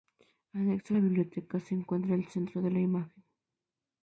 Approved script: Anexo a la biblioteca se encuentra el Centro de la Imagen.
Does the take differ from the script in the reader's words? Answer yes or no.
no